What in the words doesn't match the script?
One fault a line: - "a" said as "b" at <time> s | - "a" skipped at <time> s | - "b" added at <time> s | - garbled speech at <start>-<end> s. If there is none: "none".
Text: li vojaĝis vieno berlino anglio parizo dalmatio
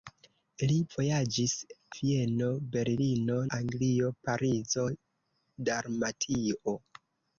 none